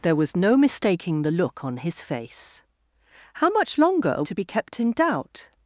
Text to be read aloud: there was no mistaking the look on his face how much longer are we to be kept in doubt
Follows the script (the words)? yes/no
no